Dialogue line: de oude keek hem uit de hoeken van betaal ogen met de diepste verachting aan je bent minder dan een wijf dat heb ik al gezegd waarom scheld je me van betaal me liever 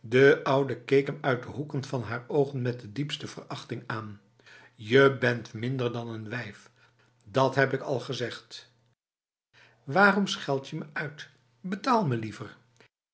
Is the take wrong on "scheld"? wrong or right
right